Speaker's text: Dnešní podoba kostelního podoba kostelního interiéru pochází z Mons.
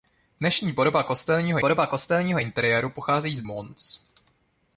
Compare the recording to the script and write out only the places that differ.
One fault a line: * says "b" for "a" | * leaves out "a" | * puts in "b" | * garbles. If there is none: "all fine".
all fine